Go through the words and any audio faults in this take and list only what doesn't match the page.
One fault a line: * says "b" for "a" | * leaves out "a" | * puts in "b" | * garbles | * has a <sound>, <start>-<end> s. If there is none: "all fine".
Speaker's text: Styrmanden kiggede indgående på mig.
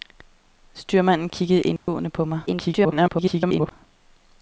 * has a dropout, 1.8-1.9 s
* garbles